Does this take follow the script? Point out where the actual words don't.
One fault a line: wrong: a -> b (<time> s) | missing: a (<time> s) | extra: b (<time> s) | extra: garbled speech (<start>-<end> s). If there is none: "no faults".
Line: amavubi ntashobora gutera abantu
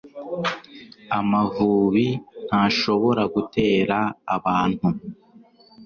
no faults